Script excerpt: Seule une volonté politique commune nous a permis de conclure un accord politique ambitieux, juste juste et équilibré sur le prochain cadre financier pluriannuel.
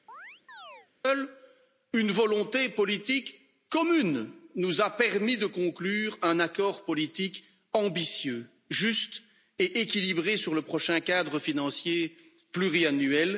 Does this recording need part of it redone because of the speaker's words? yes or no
yes